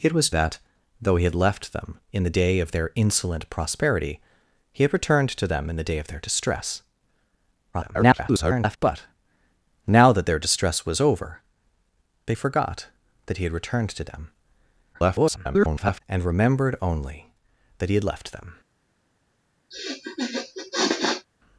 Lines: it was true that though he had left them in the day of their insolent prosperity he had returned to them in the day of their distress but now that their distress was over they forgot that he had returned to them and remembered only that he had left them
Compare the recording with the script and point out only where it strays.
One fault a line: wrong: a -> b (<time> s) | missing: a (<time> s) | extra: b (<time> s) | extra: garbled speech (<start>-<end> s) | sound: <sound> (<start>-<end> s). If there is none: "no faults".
missing: true (0.3 s)
extra: garbled speech (7.7-8.8 s)
extra: garbled speech (14.9-16.0 s)
sound: sniff (19.7-21.3 s)